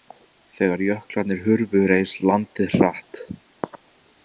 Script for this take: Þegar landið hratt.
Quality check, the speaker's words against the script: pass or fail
fail